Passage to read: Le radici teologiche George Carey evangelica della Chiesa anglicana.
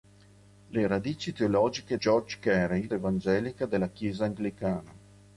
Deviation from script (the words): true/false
false